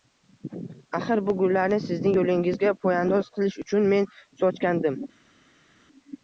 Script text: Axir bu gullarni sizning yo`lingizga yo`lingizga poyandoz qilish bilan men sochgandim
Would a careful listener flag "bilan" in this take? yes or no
yes